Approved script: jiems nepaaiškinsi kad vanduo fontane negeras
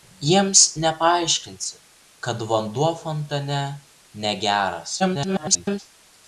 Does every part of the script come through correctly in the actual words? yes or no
no